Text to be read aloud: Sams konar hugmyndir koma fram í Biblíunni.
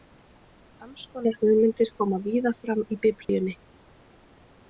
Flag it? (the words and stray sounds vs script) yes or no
yes